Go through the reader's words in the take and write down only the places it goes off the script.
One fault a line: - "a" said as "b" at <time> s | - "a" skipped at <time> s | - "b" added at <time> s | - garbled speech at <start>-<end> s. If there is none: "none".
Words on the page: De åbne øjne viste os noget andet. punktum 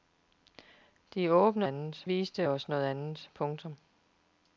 - "øjne" said as "andet" at 1.6 s